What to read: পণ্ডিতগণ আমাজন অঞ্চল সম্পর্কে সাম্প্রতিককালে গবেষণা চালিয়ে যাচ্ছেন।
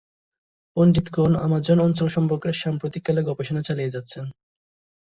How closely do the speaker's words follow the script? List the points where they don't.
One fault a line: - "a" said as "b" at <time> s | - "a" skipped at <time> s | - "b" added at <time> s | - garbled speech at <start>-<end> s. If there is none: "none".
none